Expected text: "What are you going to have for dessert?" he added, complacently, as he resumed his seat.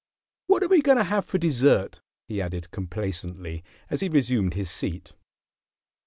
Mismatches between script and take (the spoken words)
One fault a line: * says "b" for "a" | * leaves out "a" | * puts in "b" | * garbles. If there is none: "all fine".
* says "we" for "you"